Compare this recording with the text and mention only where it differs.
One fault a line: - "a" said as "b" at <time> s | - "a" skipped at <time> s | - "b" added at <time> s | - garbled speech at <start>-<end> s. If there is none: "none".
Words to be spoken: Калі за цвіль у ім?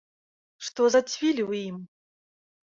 - "Калі" said as "Што" at 0.7 s